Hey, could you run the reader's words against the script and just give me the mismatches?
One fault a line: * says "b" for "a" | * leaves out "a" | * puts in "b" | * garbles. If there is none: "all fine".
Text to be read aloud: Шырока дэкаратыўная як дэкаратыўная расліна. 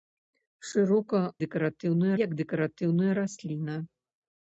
all fine